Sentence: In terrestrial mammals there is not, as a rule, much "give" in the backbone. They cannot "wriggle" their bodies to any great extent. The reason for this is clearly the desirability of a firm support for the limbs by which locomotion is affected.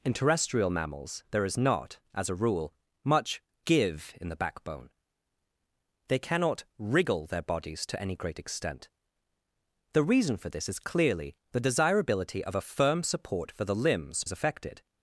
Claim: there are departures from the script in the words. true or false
true